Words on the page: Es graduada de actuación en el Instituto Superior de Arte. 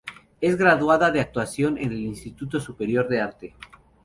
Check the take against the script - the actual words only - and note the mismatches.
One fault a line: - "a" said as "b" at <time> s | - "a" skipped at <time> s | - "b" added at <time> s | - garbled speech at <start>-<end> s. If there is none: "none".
none